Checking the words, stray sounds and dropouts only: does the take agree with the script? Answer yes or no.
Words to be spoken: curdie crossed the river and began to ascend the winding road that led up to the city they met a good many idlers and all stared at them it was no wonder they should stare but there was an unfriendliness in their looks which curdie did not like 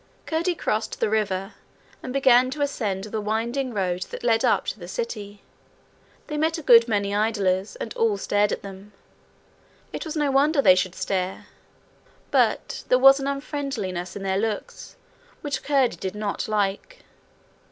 yes